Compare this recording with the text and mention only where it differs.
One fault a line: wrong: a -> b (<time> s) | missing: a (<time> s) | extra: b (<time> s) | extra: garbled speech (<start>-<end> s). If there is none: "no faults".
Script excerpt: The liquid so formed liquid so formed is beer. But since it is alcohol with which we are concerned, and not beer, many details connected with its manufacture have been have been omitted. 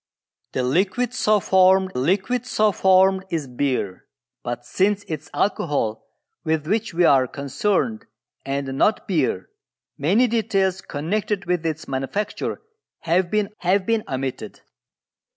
no faults